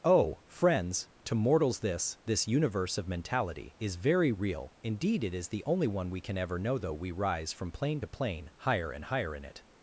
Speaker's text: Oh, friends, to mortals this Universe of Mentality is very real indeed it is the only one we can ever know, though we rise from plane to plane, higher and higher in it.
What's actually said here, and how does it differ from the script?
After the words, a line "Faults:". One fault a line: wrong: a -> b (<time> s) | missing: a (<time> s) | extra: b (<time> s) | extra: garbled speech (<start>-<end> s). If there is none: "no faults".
Oh, friends, to mortals this this Universe of Mentality is very real indeed it is the only one we can ever know, though we rise from plane to plane, higher and higher in it.
Faults:
extra: this (2.2 s)